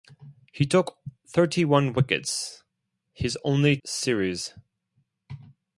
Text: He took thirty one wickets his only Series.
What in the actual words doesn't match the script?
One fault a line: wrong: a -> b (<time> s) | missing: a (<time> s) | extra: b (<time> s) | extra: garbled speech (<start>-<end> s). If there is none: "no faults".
no faults